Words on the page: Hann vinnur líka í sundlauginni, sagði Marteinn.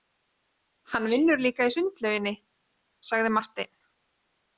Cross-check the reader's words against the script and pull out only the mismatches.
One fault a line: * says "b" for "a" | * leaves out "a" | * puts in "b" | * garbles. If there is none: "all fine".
all fine